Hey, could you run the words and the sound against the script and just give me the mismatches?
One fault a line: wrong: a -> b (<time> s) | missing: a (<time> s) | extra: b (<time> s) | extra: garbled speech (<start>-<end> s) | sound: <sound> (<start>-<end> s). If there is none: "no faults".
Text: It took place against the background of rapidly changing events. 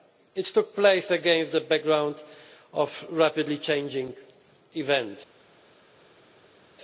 no faults